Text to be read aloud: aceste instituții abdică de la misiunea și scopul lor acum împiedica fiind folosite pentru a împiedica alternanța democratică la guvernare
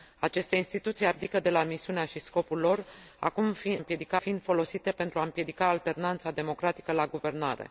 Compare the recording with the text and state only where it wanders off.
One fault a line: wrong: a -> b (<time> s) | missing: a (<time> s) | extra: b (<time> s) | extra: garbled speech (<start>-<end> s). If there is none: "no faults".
no faults